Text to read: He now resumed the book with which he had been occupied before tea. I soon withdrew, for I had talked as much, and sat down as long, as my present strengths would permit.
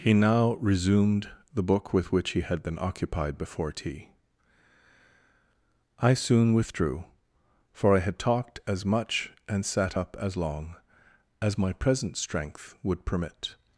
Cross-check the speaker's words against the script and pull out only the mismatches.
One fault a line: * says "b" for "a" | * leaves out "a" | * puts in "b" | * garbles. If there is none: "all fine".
* says "up" for "down"
* says "strength" for "strengths"